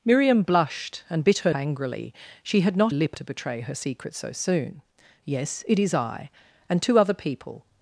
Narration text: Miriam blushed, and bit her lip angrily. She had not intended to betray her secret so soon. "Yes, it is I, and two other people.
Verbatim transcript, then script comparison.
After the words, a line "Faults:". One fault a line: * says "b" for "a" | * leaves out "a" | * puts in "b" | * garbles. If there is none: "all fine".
Miriam blushed, and bit her angrily. She had not lip to betray her secret so soon. "Yes, it is I, and two other people.
Faults:
* leaves out "lip"
* says "lip" for "intended"